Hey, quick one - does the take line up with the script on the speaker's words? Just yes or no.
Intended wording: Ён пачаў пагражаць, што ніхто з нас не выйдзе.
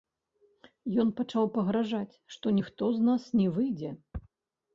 yes